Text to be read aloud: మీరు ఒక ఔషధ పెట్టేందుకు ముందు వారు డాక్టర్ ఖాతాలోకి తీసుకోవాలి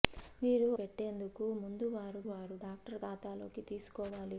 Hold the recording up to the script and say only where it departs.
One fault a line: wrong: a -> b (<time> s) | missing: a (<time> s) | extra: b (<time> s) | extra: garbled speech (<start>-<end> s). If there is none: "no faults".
missing: ఒక ఔషధ (0.7 s)
extra: వారు (2.3 s)